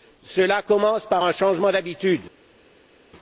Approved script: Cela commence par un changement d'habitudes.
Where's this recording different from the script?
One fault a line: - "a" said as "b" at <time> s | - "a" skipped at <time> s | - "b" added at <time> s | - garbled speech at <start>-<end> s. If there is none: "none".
none